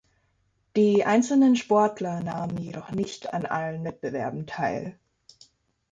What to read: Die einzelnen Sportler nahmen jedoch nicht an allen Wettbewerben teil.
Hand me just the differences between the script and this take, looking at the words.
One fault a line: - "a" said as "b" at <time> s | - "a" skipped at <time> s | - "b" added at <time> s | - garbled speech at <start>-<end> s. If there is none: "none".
none